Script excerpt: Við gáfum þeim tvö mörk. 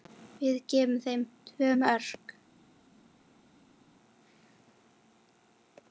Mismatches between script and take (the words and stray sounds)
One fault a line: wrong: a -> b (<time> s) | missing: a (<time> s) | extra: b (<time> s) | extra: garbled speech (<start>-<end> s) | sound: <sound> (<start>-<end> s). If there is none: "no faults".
no faults